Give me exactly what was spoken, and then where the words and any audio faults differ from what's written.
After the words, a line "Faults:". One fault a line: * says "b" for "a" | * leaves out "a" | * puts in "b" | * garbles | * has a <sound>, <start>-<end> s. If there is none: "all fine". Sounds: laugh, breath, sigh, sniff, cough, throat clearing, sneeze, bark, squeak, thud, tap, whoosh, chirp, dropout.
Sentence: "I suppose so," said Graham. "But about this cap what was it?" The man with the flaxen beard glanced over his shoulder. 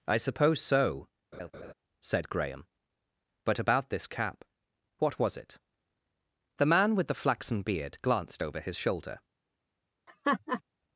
"I suppose so," said Graham. "But about this cap what was it?" The man with the flaxen beard glanced over his shoulder.
Faults:
* has a laugh, 1.3-1.7 s
* has a laugh, 10.1-10.6 s